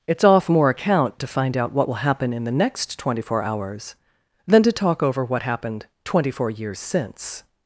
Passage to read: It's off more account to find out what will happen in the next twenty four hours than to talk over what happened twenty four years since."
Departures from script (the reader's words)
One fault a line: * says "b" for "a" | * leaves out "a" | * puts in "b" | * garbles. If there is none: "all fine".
all fine